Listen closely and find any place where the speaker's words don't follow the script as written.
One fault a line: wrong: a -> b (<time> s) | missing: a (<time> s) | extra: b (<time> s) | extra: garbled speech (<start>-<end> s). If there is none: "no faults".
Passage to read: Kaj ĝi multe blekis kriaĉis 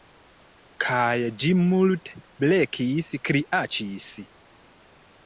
no faults